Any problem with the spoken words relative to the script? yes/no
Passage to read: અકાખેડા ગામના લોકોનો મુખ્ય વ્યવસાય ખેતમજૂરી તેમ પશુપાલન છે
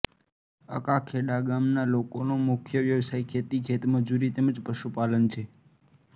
yes